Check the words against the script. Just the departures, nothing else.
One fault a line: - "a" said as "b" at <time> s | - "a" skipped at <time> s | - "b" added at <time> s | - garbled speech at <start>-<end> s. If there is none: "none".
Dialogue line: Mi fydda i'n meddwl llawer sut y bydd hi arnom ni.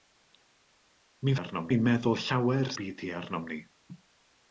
- "fydda" said as "arnom" at 1.4 s
- "sut" skipped at 2.7 s